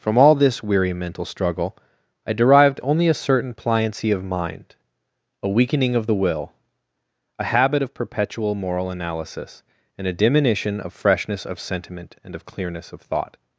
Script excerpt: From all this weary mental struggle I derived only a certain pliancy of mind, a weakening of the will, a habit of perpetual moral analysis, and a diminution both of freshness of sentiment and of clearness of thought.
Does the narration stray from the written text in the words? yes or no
yes